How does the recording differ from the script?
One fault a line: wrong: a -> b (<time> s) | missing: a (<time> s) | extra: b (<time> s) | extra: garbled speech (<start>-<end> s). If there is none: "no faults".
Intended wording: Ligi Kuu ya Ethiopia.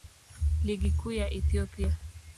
no faults